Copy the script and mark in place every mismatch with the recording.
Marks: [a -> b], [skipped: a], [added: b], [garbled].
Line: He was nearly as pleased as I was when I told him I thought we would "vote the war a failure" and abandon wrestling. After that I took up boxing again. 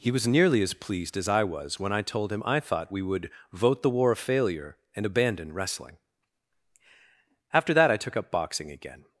He was nearly as pleased as I was when I told him I thought we would "vote the war a failure" and abandon wrestling. After that I took up boxing again.